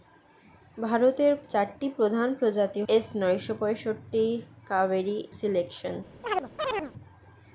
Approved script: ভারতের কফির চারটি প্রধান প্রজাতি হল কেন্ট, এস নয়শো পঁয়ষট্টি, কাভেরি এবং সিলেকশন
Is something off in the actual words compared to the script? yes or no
yes